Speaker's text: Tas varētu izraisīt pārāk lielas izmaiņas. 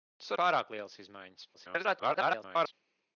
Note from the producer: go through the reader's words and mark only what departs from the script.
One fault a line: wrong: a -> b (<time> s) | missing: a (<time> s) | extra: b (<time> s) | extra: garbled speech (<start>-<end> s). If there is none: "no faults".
missing: varētu izraisīt (0.3 s)
extra: garbled speech (1.5-2.7 s)